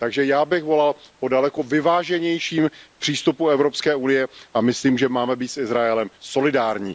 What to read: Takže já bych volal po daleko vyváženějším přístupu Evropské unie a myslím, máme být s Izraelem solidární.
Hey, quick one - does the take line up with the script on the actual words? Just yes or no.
no